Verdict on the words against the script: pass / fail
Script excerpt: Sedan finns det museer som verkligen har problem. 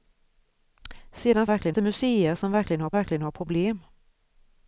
fail